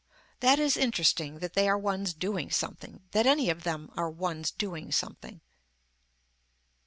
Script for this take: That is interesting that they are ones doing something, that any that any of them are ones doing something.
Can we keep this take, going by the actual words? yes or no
no